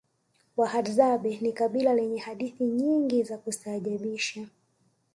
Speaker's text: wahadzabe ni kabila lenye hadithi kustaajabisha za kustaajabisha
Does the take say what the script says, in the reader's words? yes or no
no